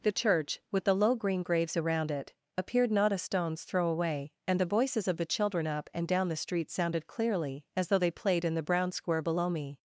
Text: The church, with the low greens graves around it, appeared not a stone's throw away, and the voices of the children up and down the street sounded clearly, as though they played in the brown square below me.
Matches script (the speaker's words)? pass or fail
fail